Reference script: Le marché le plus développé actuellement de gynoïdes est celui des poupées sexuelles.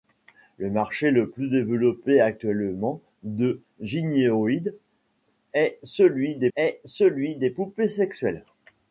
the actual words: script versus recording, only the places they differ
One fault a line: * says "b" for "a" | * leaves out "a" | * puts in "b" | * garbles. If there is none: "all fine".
* puts in "est celui des"